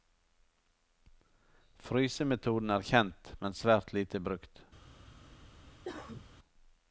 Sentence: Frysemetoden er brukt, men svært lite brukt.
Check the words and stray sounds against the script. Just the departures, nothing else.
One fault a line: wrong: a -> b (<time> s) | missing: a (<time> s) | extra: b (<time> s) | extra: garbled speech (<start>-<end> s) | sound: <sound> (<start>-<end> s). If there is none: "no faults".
wrong: brukt -> kjent (2.9 s)
sound: cough (5.8-6.2 s)